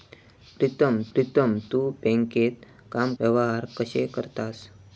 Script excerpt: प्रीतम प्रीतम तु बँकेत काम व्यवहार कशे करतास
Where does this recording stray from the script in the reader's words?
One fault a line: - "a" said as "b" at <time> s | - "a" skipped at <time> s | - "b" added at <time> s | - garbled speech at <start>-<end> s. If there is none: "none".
none